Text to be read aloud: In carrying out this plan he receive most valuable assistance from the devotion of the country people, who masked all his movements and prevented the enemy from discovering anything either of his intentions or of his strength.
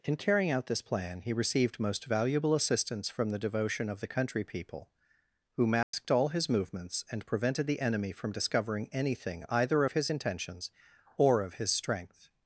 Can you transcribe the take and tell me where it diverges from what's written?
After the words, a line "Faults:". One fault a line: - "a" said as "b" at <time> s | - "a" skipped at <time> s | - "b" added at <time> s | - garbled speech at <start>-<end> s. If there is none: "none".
In carrying out this plan he received most valuable assistance from the devotion of the country people, who masked all his movements and prevented the enemy from discovering anything either of his intentions or of his strength.
Faults:
- "receive" said as "received" at 1.3 s